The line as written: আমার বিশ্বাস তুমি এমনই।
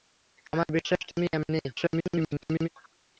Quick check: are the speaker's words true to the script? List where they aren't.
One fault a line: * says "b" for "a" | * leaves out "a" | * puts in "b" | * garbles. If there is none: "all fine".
* garbles